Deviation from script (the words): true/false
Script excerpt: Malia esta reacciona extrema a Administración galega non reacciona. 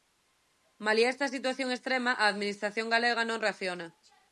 true